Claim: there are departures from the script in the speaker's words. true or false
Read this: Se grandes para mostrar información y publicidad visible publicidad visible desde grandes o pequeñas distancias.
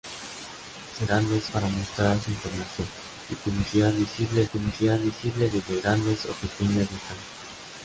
false